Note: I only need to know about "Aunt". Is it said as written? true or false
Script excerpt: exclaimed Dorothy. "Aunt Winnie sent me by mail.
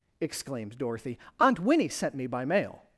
true